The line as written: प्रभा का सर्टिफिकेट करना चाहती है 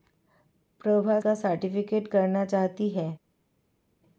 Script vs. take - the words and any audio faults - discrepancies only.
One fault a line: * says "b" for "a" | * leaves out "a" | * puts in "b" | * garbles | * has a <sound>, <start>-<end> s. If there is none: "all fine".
all fine